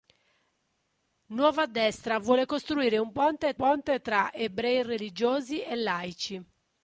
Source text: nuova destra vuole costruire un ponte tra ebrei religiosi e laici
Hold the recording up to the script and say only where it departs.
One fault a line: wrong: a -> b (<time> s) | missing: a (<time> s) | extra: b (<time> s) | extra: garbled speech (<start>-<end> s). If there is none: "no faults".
extra: ponte (3.5 s)